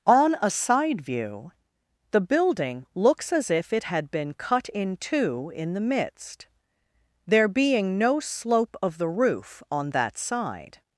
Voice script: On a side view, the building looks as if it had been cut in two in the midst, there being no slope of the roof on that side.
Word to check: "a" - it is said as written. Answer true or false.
true